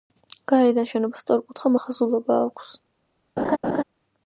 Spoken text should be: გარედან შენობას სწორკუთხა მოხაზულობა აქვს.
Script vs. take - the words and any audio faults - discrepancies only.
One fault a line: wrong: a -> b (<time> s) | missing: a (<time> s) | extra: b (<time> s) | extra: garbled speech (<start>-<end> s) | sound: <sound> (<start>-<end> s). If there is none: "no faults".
sound: laugh (3.4-3.8 s)